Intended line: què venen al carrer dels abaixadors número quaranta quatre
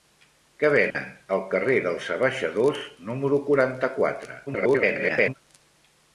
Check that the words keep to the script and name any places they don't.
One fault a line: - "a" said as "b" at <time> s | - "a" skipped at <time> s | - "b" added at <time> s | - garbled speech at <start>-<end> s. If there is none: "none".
- garbled speech at 4.5-5.3 s